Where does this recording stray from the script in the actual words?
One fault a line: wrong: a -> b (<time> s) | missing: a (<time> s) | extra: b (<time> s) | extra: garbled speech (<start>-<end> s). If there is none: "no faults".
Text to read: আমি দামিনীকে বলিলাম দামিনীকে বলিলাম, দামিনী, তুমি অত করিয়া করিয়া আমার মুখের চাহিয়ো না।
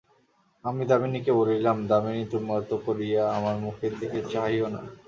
missing: দামিনীকে বলিলাম (1.8 s)
missing: করিয়া (3.2 s)
extra: দিকে (4.0 s)